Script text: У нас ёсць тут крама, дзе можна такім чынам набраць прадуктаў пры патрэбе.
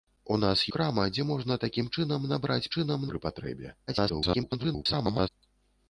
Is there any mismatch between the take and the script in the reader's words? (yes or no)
yes